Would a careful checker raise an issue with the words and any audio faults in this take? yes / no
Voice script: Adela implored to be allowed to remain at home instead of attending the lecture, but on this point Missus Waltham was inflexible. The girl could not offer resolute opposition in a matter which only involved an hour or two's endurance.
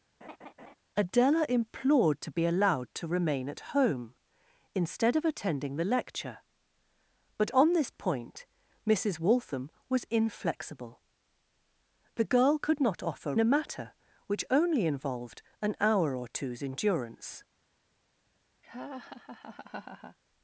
yes